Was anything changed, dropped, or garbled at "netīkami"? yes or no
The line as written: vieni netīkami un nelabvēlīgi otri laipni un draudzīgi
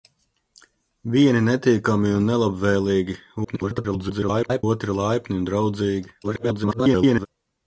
no